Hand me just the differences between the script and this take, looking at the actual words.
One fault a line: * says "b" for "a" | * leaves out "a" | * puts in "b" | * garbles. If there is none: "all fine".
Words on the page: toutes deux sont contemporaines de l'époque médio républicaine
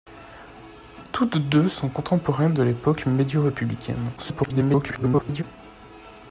* garbles